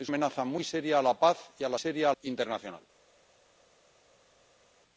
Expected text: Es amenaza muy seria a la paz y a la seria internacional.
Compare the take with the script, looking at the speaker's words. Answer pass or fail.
pass